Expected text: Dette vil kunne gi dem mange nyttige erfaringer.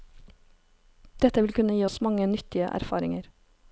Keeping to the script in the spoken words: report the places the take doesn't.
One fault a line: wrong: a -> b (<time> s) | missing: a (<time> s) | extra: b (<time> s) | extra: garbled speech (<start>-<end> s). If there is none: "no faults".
wrong: dem -> oss (1.8 s)